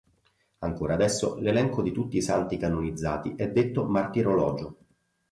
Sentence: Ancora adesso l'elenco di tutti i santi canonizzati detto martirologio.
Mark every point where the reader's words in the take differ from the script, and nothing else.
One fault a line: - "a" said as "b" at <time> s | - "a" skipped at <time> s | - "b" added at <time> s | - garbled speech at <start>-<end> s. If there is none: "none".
- "è" added at 3.4 s